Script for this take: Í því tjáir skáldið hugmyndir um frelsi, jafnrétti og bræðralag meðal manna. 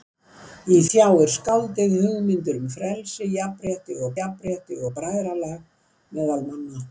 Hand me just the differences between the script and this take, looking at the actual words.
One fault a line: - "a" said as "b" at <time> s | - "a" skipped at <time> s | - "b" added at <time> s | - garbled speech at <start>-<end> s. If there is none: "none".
- "því" skipped at 0.8 s
- "jafnrétti og" added at 4.2 s